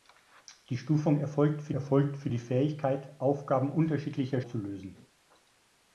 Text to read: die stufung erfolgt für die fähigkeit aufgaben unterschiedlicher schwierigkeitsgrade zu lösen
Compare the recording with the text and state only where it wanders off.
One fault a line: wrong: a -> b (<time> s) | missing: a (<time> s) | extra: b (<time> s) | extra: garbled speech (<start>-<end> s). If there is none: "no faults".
extra: erfolgt für (1.7 s)
missing: schwierigkeitsgrade (4.4 s)